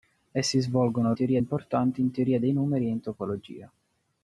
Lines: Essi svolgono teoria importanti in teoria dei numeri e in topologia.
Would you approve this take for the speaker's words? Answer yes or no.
yes